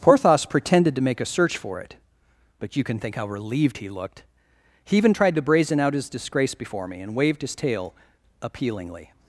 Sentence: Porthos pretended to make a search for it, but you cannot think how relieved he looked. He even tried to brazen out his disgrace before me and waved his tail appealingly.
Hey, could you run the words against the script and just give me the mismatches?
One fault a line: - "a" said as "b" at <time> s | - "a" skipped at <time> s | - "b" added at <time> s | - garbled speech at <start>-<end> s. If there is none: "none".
- "cannot" said as "can" at 2.8 s